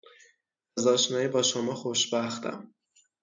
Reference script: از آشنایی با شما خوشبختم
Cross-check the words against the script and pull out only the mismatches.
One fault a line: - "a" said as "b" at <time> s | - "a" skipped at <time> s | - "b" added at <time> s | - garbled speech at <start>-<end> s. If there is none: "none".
none